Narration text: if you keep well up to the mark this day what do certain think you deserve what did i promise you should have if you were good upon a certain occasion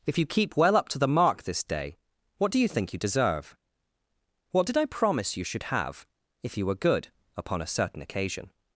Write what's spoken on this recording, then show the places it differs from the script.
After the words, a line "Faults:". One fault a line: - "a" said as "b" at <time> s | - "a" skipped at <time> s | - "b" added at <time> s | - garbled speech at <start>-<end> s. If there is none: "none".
if you keep well up to the mark this day what do you think you deserve what did i promise you should have if you were good upon a certain occasion
Faults:
- "certain" said as "you" at 2.6 s